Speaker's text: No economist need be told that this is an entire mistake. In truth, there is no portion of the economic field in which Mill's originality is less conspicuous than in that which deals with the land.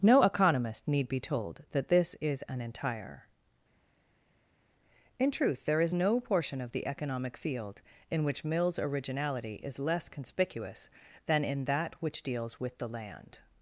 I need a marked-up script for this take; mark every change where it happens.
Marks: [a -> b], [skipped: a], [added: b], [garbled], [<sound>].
No economist need be told that this is an entire [skipped: mistake.] In truth, there is no portion of the economic field in which Mill's originality is less conspicuous than in that which deals with the land.